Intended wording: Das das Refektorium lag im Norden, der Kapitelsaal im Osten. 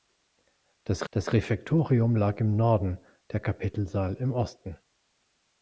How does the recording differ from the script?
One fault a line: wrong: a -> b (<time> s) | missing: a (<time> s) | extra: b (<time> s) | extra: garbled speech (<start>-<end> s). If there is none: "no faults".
no faults